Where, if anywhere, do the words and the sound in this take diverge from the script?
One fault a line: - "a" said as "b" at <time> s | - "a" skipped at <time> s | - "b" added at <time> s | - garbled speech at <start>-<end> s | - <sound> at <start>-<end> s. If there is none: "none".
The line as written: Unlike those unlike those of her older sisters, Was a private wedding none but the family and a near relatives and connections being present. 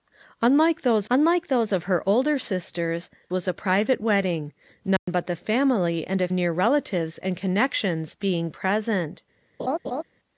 - dropout at 5.0-5.1 s
- laugh at 9.6-10.0 s